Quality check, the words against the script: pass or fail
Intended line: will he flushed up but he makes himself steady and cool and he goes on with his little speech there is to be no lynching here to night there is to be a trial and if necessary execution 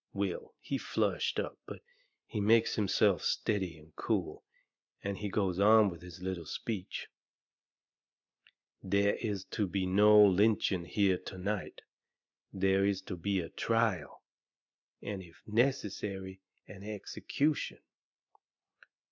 fail